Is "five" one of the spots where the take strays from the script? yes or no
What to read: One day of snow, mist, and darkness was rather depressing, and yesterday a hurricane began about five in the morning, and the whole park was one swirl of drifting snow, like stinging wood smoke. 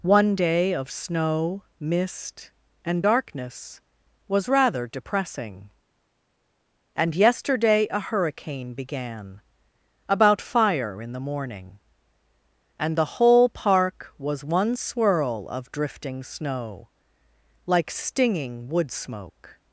yes